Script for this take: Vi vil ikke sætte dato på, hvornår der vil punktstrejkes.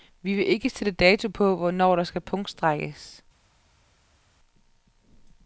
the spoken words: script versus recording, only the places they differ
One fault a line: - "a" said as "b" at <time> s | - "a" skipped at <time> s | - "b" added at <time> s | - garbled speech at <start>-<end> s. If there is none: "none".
- "vil" said as "skal" at 2.0 s